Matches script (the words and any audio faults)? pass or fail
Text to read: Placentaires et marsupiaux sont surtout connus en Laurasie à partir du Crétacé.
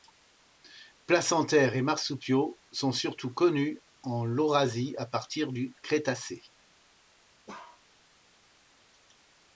fail